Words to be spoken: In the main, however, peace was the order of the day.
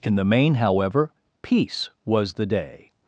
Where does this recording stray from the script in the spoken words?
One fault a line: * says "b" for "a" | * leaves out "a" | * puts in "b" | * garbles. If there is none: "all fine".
* leaves out "order of the"